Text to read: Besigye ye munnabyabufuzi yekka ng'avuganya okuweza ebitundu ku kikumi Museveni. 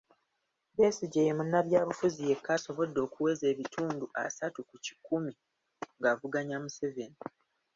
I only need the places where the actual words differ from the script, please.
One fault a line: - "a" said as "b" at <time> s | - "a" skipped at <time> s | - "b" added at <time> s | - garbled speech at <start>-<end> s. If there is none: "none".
- "ng'avuganya" said as "asobodde" at 2.6 s
- "asatu" added at 4.2 s
- "ng'avuganya" added at 6.0 s